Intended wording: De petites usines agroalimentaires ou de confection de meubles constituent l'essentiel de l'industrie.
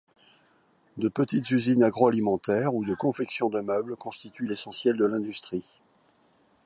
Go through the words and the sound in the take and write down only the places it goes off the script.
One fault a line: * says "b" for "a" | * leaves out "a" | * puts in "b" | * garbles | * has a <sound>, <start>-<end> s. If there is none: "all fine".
all fine